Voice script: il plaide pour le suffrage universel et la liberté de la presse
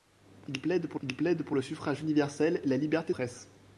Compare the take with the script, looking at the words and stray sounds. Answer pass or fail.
fail